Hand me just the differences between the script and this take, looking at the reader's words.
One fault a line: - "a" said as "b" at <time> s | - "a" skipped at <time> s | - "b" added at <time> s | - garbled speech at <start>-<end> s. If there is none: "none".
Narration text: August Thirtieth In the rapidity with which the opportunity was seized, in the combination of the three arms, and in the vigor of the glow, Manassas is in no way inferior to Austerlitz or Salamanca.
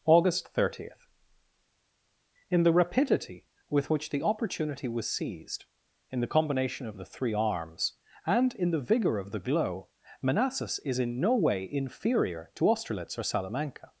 none